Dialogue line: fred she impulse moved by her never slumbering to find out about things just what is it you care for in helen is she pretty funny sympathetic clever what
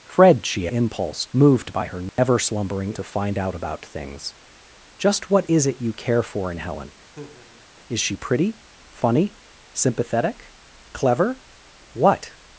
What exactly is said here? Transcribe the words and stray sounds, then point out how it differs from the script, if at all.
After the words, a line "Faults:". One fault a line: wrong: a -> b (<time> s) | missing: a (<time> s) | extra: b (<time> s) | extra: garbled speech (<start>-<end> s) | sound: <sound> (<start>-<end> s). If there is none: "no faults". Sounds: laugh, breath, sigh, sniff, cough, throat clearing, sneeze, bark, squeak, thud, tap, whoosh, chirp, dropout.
fred she impulse moved by her never slumbering to find out about things just what is it you care for in helen is she pretty funny sympathetic clever what
Faults:
sound: dropout (2.1-2.2 s)
sound: laugh (7.1-7.6 s)